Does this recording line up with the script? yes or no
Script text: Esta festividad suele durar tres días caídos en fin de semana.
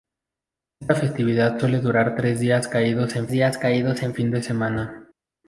no